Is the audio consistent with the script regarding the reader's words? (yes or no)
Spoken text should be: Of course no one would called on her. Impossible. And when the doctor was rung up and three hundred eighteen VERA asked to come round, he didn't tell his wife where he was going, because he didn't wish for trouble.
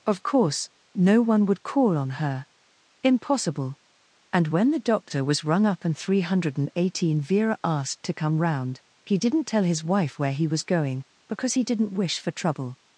no